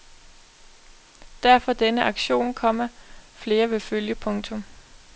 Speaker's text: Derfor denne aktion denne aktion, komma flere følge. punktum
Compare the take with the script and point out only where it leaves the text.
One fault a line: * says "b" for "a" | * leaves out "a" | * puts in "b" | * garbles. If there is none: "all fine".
* leaves out "denne aktion"
* puts in "vil"